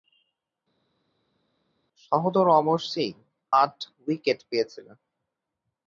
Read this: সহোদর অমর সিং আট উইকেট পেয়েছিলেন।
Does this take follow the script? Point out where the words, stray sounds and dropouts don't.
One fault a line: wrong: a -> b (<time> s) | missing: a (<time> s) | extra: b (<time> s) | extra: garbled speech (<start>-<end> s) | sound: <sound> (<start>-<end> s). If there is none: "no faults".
no faults